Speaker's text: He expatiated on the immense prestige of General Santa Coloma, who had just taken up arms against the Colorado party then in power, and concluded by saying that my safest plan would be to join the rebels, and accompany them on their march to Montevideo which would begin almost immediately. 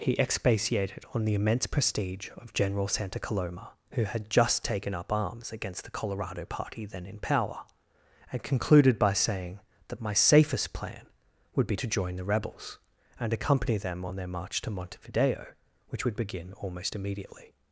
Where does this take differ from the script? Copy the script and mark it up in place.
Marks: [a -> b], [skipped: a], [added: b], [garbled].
He expatiated on the immense prestige of General Santa Coloma, who had just taken up arms against the Colorado party then in power, and concluded by saying that my safest plan would be to join the rebels, and accompany them on their march to Montevideo which would begin almost immediately.